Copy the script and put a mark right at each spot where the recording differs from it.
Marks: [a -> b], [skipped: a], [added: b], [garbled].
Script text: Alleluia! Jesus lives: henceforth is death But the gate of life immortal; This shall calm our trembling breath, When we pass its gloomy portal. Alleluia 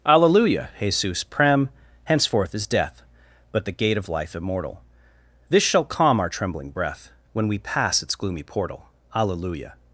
Alleluia! Jesus [lives: -> prem] henceforth is death But the gate of life immortal; This shall calm our trembling breath, When we pass its gloomy portal. Alleluia